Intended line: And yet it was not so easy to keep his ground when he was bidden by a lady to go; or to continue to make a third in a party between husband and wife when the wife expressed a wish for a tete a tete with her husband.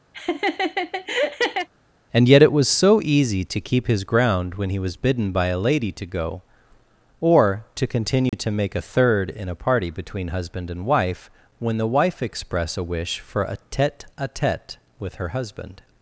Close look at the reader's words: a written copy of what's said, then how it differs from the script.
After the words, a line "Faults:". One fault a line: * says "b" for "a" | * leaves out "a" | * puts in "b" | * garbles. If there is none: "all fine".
And yet it was so easy to keep his ground when he was bidden by a lady to go; or to continue to make a third in a party between husband and wife when the wife express a wish for a tete a tete with her husband.
Faults:
* leaves out "not"
* says "express" for "expressed"